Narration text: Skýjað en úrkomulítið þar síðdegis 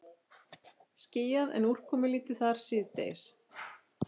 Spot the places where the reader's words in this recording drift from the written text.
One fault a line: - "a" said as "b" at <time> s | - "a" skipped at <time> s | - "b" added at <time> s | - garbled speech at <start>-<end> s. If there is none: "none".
none